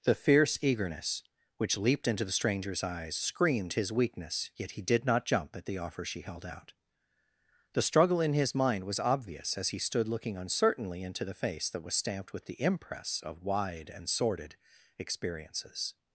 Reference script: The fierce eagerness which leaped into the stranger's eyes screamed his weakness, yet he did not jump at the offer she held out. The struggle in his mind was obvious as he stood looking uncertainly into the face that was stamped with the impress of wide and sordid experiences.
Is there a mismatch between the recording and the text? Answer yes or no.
no